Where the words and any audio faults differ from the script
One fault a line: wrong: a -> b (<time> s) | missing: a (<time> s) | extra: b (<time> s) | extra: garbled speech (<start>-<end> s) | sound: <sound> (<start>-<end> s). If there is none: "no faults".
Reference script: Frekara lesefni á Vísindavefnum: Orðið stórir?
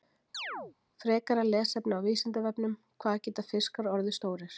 sound: chirp (0.3-0.8 s)
extra: Hvað geta fiskar (3.0 s)